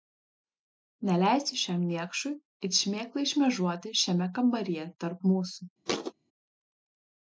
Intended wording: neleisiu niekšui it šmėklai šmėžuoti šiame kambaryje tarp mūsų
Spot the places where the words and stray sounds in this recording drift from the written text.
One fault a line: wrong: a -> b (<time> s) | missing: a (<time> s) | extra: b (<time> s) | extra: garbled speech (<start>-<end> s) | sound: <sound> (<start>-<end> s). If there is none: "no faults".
extra: šiam (1.6 s)
sound: thud (5.9-6.1 s)